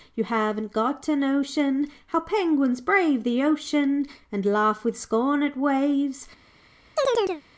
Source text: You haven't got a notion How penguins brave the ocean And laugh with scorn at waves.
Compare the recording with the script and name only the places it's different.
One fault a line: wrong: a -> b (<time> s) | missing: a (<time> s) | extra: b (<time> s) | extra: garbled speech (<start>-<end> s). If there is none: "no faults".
no faults